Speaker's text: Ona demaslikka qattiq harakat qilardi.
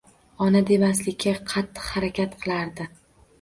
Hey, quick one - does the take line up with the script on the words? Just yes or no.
yes